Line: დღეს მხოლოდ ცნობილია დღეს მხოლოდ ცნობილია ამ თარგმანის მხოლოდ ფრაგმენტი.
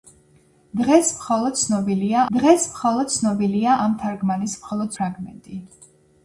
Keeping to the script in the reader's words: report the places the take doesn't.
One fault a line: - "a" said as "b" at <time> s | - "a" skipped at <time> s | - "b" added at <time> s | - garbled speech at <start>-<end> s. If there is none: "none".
none